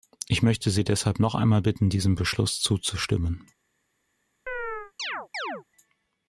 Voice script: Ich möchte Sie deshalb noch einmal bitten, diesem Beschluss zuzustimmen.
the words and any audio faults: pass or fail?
fail